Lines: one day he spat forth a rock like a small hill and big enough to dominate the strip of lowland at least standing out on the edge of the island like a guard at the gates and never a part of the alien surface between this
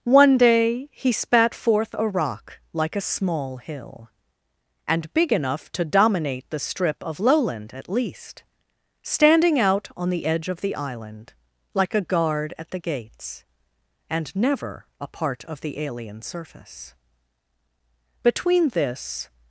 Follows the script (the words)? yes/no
yes